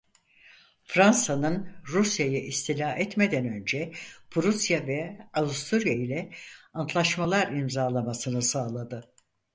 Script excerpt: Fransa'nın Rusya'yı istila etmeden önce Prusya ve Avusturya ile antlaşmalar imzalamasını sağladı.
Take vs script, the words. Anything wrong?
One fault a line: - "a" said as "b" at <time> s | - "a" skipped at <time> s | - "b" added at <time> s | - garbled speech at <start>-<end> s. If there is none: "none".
none